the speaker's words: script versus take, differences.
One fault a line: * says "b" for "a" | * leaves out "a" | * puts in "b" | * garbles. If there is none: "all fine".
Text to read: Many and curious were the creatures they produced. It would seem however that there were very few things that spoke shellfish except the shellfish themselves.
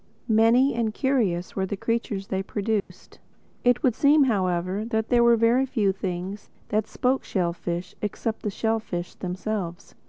all fine